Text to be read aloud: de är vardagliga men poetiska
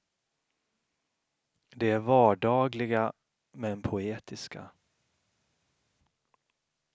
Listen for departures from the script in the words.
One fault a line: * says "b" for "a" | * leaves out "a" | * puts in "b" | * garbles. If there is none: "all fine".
all fine